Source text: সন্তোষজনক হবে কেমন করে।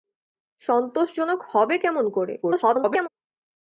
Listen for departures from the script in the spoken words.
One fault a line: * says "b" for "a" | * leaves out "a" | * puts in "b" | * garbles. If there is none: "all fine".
* garbles